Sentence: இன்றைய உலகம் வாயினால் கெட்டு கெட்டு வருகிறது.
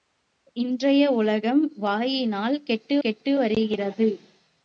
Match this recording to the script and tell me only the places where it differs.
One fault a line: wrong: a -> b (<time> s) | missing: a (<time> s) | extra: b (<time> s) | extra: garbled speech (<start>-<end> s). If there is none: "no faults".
no faults